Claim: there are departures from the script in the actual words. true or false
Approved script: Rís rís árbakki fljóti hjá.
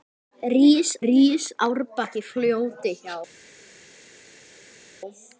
false